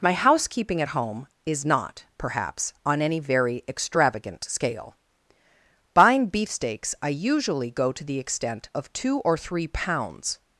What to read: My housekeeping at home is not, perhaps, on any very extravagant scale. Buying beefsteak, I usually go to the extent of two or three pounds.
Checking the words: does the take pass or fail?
fail